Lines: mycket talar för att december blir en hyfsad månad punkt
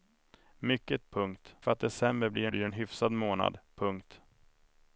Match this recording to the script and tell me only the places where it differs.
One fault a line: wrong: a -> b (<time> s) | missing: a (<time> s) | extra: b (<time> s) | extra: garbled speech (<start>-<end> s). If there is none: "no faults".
wrong: talar -> punkt (1.1 s)
extra: blir (2.5 s)